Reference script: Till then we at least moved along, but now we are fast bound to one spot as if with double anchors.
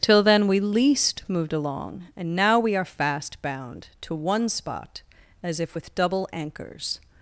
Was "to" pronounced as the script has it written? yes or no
yes